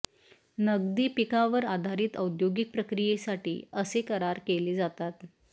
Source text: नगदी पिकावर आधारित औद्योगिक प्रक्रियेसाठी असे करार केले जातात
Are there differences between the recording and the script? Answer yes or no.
no